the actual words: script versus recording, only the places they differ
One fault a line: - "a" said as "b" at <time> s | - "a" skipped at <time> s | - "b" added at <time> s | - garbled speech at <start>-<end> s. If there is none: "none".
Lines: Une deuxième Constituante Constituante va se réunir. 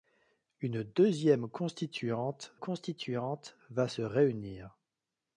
none